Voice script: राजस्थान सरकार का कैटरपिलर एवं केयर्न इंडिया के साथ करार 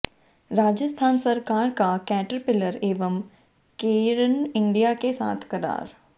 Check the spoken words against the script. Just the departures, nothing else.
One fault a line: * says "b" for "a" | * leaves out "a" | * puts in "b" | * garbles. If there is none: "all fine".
all fine